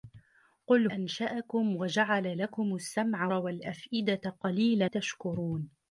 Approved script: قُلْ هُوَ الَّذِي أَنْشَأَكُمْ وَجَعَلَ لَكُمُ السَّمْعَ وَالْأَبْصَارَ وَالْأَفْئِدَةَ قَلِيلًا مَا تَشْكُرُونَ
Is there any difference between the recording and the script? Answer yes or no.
yes